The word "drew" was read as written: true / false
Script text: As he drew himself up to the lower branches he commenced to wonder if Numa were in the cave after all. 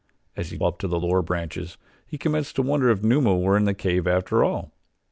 false